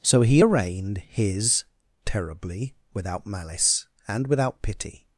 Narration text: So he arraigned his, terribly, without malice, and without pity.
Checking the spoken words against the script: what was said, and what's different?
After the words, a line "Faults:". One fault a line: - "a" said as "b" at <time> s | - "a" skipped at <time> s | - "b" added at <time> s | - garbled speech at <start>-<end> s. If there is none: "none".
So he arraigned his, terribly, without malice, and without pity.
Faults:
none